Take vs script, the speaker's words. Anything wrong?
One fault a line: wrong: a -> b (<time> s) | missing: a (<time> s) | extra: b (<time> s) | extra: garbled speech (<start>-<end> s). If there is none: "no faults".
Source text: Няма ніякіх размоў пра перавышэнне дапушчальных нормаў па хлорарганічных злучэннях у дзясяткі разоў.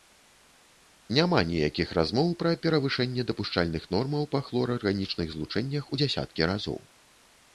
no faults